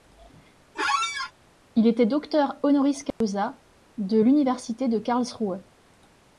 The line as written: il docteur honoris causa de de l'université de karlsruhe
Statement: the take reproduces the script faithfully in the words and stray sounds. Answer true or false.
false